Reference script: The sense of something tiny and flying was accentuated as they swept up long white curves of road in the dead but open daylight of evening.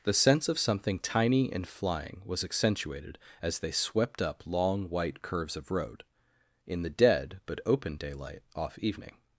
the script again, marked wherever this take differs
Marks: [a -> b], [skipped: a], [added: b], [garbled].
The sense of something tiny and flying was accentuated as they swept up long white curves of road in the dead but open daylight [of -> off] evening.